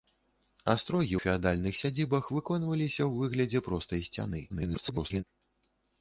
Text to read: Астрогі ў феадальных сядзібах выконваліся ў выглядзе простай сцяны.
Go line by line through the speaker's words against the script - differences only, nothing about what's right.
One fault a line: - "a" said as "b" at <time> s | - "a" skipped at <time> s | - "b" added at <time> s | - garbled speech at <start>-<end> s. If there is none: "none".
- "ў" skipped at 1.1 s
- garbled speech at 4.5-5.2 s